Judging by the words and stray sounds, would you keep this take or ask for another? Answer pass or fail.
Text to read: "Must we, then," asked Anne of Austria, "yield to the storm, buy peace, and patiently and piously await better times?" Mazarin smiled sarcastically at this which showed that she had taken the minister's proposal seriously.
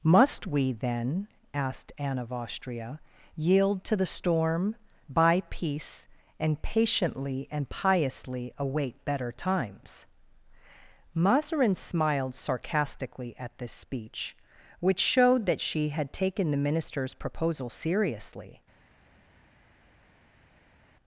fail